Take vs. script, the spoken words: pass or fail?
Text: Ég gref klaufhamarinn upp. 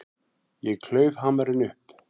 fail